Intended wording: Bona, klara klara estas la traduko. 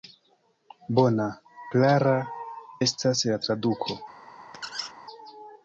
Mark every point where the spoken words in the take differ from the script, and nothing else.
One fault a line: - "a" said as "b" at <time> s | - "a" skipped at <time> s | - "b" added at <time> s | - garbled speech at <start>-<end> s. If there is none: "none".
- "klara" skipped at 2.1 s